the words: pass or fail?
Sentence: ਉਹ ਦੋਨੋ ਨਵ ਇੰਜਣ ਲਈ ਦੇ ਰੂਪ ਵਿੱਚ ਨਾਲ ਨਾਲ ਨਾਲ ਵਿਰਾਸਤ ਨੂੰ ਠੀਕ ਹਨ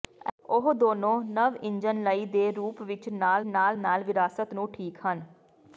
pass